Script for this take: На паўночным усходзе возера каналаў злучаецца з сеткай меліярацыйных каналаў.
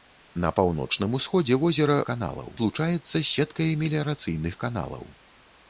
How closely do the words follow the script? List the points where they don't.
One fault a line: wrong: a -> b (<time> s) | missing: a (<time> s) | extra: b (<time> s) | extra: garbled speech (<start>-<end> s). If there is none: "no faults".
no faults